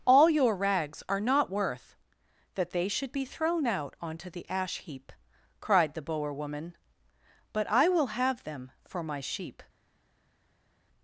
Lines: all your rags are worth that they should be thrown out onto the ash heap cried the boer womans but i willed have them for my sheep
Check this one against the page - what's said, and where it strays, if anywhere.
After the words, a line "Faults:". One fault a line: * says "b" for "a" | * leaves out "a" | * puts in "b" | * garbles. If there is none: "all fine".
all your rags are not worth that they should be thrown out onto the ash heap cried the boer woman but i will have them for my sheep
Faults:
* puts in "not"
* says "woman" for "womans"
* says "will" for "willed"